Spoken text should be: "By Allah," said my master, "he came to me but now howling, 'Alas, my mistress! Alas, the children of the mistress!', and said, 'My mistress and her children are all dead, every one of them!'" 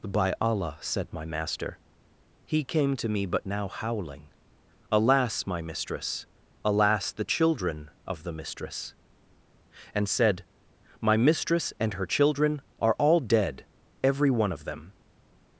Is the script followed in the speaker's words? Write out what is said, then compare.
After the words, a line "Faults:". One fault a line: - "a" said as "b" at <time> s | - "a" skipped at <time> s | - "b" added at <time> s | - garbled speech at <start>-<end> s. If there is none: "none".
"By Allah," said my master, "he came to me but now howling, 'Alas, my mistress! Alas, the children of the mistress!', and said, 'My mistress and her children are all dead, every one of them!'"
Faults:
none